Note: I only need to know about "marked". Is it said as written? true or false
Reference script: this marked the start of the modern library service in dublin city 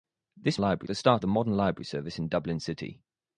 false